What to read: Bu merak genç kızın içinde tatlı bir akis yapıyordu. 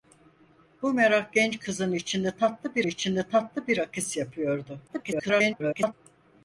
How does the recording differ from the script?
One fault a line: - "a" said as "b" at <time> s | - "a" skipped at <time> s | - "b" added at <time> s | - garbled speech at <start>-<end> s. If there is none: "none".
- "içinde tatlı bir" added at 2.8 s
- garbled speech at 4.9-5.9 s